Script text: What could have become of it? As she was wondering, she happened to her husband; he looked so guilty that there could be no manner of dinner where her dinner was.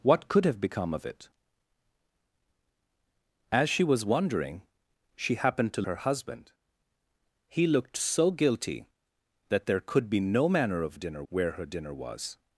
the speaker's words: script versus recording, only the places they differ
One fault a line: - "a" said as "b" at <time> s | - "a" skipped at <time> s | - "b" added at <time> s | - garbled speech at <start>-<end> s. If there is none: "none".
none